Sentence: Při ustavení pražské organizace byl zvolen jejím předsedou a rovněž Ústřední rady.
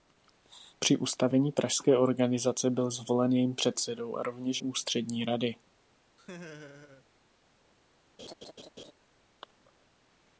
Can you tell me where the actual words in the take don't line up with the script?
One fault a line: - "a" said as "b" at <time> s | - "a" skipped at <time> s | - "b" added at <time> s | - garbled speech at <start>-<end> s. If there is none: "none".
none